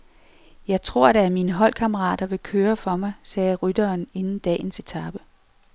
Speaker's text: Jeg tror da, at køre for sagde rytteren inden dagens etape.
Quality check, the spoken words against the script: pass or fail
fail